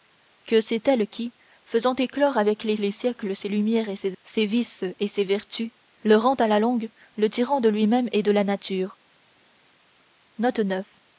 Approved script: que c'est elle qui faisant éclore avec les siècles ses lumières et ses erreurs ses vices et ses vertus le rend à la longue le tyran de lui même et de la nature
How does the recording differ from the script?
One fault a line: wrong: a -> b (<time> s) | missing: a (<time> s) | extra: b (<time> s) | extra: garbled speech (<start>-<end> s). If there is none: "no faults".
extra: les (2.8 s)
missing: erreurs (4.2 s)